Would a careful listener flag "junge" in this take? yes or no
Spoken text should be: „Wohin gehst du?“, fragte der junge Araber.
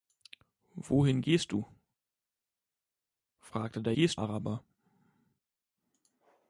yes